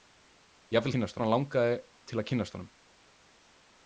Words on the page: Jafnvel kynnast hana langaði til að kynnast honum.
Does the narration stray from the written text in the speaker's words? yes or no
no